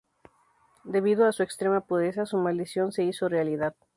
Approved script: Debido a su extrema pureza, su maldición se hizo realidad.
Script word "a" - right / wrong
right